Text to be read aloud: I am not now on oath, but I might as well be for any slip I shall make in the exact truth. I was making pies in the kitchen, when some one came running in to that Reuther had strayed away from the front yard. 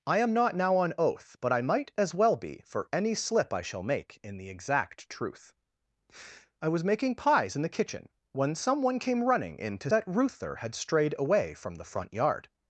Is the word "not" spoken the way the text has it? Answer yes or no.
yes